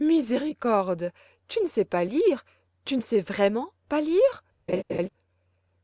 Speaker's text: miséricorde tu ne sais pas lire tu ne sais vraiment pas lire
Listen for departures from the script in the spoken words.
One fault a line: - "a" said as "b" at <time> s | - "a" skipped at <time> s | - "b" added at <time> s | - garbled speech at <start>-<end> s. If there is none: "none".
none